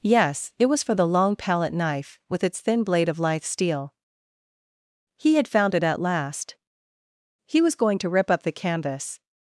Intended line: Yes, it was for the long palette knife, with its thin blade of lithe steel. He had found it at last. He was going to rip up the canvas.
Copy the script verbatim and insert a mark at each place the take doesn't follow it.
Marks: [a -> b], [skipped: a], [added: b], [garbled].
Yes, it was for the long palette knife, with its thin blade of lithe steel. He had found it at last. He was going to rip up the canvas.